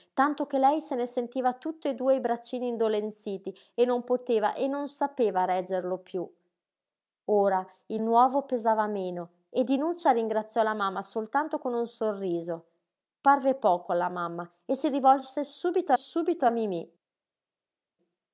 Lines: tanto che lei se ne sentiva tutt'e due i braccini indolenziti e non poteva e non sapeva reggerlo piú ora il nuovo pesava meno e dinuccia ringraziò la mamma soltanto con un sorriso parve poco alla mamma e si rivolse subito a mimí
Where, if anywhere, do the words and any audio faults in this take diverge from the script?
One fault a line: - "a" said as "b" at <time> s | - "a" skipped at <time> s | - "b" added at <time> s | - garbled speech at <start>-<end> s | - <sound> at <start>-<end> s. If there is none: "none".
- "subito" added at 15.9 s